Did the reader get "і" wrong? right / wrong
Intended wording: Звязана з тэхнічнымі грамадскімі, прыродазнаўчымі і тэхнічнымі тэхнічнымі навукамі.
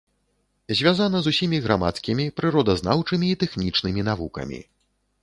right